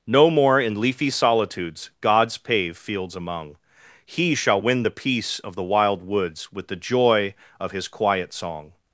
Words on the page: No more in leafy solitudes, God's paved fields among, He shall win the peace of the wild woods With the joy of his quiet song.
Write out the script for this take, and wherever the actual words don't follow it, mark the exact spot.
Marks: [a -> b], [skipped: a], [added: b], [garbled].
No more in leafy solitudes, God's [paved -> pave] fields among, He shall win the peace of the wild woods With the joy of his quiet song.